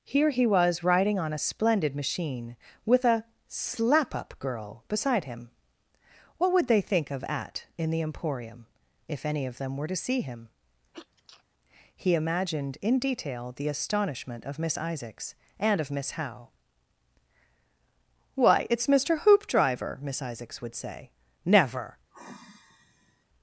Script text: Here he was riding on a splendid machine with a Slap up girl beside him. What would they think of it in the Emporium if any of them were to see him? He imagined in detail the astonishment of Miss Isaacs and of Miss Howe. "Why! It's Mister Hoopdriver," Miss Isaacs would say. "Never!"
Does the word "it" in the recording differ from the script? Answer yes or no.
yes